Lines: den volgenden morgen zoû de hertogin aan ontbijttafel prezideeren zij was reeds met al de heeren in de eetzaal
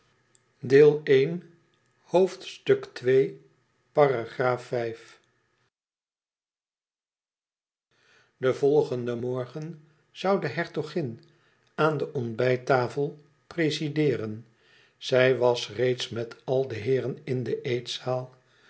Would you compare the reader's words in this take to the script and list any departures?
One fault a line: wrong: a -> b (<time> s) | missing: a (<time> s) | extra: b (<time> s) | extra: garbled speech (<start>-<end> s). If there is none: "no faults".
extra: de (12.0 s)